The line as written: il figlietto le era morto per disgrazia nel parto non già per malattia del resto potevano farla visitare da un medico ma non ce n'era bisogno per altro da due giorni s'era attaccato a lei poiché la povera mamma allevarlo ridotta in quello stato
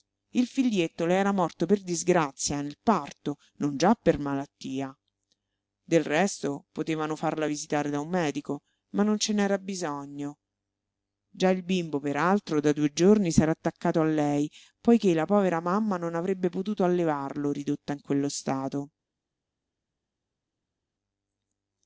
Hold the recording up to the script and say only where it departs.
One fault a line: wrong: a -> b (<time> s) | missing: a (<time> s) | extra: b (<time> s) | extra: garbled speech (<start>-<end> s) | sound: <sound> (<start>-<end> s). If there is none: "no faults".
extra: già il bimbo (11.3 s)
extra: non avrebbe potuto (16.0 s)